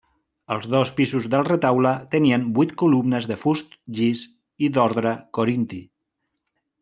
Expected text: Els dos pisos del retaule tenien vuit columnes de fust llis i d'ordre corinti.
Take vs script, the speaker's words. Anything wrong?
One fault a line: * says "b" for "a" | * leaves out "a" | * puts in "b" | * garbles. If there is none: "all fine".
all fine